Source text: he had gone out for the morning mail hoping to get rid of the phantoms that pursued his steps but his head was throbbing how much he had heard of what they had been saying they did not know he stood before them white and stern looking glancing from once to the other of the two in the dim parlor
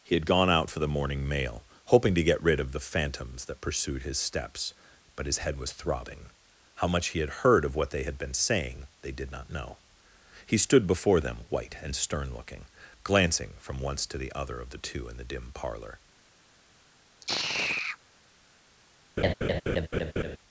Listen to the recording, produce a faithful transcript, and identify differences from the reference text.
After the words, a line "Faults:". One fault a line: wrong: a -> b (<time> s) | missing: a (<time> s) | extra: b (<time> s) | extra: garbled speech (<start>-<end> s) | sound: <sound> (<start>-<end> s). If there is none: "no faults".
he had gone out for the morning mail hoping to get rid of the phantoms that pursued his steps but his head was throbbing how much he had heard of what they had been saying they did not know he stood before them white and stern looking glancing from once to the other of the two in the dim parlor
Faults:
sound: sigh (17.2-18.0 s)
sound: laugh (19.2-20.4 s)